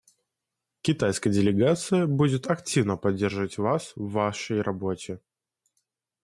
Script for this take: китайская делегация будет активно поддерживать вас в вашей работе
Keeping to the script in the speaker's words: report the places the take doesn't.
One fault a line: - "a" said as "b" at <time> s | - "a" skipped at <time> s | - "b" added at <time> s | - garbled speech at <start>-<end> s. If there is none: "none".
none